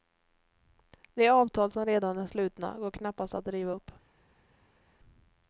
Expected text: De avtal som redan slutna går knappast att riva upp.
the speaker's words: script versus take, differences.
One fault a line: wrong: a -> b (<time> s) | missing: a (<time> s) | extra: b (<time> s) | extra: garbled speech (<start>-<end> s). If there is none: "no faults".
extra: är (2.2 s)